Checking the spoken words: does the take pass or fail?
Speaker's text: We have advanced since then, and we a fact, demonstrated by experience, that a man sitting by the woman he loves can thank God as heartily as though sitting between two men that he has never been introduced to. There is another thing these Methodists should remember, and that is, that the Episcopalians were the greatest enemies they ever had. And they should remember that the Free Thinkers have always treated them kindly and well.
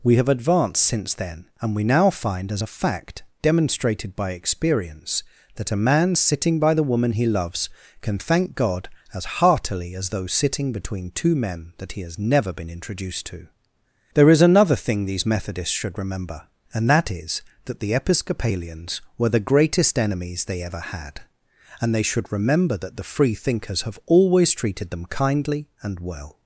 fail